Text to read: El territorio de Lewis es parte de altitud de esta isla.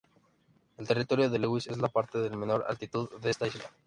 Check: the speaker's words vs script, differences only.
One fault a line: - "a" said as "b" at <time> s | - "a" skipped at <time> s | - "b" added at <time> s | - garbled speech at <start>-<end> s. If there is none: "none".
- "la" added at 1.8 s
- "menor" added at 2.4 s